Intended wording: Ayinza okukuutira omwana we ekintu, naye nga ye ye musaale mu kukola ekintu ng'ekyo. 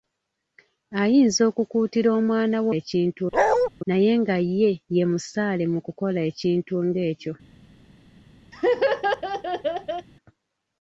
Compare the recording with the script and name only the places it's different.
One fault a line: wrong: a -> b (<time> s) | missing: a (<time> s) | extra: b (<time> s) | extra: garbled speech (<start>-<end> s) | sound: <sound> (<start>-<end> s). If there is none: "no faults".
sound: bark (3.3-3.7 s)
sound: laugh (8.5-10.1 s)